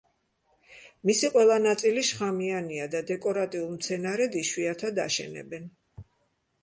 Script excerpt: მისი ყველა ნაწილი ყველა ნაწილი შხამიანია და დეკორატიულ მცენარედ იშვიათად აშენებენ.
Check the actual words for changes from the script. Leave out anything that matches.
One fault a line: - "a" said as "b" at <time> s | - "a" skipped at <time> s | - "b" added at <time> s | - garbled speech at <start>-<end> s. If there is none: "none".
- "ყველა ნაწილი" skipped at 2.0 s